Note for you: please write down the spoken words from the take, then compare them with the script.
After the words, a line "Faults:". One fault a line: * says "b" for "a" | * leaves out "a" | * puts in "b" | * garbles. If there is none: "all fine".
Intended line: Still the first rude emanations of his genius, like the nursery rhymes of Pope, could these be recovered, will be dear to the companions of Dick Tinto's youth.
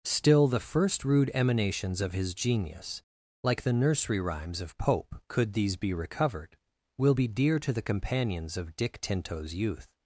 Still the first rude emanations of his genius, like the nursery rhymes of Pope, could these be recovered, will be dear to the companions of Dick Tinto's youth.
Faults:
all fine